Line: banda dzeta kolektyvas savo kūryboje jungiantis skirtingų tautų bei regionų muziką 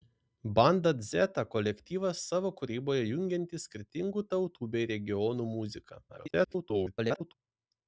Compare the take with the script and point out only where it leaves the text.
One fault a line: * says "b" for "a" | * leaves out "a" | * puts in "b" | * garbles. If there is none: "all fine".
* garbles